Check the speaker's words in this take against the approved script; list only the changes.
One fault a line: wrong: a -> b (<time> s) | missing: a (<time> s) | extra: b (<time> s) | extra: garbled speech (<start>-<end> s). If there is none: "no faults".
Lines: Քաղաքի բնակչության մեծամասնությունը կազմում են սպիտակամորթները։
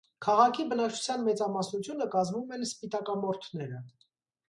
no faults